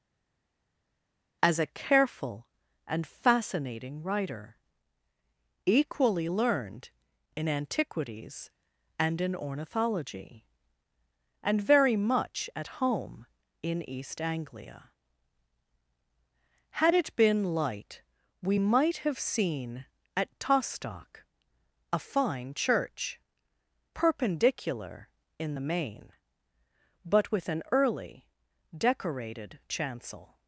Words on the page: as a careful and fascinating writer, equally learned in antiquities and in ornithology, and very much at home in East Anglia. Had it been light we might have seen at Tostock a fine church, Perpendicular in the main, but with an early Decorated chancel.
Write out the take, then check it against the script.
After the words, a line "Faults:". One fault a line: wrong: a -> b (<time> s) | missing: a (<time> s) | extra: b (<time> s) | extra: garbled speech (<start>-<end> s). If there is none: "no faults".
as a careful and fascinating writer, equally learned in antiquities and in ornithology, and very much at home in East Anglia. Had it been light we might have seen at Tostock a fine church, Perpendicular in the main, but with an early Decorated chancel.
Faults:
no faults